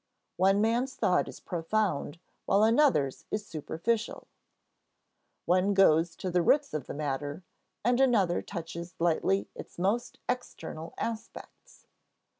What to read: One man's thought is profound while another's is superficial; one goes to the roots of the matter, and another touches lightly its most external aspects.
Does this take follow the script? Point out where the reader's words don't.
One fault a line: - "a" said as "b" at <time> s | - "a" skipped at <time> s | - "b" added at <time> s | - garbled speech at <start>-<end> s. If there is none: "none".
none